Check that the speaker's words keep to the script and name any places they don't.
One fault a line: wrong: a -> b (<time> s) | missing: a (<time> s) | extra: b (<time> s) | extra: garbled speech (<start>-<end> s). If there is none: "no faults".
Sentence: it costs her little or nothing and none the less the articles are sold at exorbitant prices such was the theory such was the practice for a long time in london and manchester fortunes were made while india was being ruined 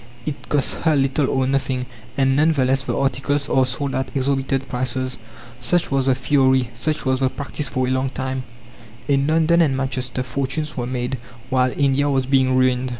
no faults